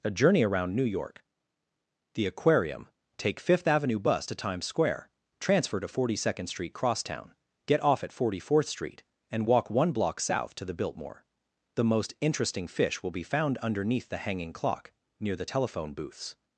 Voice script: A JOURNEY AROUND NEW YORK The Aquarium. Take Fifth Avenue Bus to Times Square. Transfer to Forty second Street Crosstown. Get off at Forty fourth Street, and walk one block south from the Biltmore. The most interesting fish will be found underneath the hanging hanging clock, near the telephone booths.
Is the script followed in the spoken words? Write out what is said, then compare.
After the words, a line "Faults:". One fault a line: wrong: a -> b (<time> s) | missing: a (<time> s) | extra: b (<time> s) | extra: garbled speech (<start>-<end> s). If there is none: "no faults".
A JOURNEY AROUND NEW YORK The Aquarium. Take Fifth Avenue Bus to Times Square. Transfer to Forty second Street Crosstown. Get off at Forty fourth Street, and walk one block south to the Biltmore. The most interesting fish will be found underneath the hanging clock, near the telephone booths.
Faults:
wrong: from -> to (10.6 s)
missing: hanging (14.5 s)